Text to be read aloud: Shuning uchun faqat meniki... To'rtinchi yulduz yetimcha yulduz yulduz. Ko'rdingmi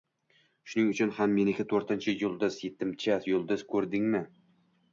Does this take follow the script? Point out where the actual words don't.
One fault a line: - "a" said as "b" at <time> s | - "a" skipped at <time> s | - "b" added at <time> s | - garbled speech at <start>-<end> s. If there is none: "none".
- "faqat" said as "ham" at 1.2 s
- "yulduz" skipped at 3.7 s